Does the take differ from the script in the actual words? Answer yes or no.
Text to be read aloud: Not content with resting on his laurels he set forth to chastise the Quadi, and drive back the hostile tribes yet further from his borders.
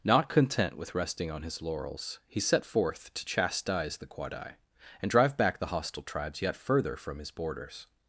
no